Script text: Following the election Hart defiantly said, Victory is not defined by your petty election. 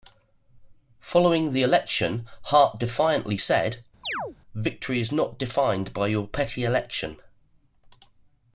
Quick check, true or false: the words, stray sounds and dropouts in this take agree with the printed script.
false